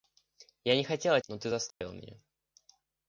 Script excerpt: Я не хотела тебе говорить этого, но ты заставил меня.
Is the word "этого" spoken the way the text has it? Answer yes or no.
no